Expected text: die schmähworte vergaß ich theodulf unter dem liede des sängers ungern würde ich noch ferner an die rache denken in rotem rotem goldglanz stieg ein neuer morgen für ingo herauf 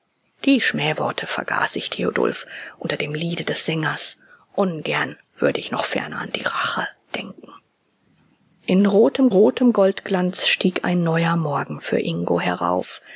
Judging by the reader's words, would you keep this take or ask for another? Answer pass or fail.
pass